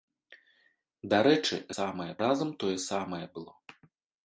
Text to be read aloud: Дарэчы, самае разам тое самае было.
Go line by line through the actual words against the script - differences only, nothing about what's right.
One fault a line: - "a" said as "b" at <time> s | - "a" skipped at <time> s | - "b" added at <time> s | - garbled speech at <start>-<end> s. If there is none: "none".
none